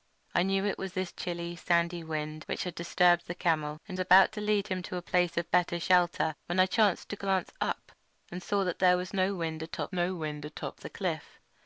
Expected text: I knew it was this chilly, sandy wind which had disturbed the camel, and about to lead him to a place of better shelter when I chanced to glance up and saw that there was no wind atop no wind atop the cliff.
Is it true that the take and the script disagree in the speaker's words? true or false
false